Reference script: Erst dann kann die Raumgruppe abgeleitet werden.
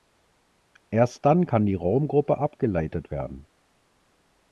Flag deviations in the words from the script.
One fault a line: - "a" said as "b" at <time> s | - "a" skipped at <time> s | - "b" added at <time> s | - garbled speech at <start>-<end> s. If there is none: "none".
none